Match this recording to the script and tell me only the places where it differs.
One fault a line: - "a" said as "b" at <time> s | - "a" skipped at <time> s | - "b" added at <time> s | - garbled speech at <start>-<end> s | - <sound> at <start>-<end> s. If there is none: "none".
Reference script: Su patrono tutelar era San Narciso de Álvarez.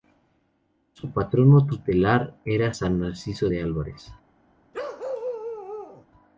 - bark at 4.7-6.1 s